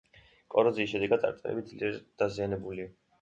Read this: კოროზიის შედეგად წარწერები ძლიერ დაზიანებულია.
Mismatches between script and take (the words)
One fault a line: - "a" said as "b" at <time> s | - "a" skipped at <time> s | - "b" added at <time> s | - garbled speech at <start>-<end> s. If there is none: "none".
none